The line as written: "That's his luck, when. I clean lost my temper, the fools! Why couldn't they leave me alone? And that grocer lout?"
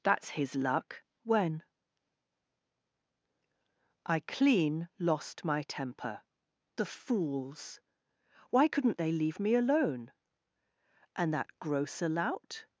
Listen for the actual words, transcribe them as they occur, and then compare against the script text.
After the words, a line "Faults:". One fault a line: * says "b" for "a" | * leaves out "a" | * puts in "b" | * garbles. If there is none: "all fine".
"That's his luck, when. I clean lost my temper, the fools! Why couldn't they leave me alone? And that grocer lout?"
Faults:
all fine